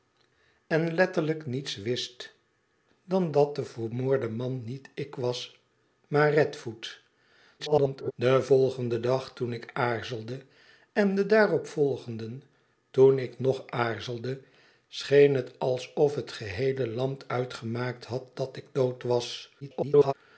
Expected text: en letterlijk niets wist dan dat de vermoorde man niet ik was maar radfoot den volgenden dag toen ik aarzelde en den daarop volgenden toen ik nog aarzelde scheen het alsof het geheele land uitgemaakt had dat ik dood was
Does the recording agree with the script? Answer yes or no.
no